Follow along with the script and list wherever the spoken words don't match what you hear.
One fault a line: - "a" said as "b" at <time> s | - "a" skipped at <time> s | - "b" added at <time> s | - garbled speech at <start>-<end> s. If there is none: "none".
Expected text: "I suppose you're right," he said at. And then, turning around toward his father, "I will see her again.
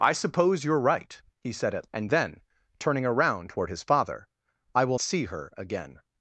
none